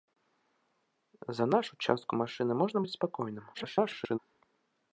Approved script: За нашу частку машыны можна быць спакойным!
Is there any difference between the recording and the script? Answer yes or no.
yes